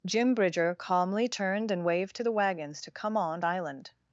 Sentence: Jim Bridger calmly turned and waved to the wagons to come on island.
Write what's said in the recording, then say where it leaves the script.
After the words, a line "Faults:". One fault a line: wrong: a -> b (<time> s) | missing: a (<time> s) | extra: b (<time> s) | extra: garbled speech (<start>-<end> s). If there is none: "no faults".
Jim Bridger calmly turned and waved to the wagons to come on island.
Faults:
no faults